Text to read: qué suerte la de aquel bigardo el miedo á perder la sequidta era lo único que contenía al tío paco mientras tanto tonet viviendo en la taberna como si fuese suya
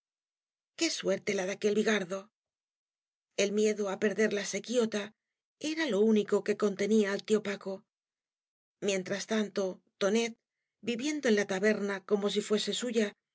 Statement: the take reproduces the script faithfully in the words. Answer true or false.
true